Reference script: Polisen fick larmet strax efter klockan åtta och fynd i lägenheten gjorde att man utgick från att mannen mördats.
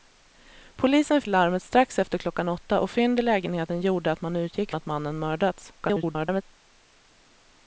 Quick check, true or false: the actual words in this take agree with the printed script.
false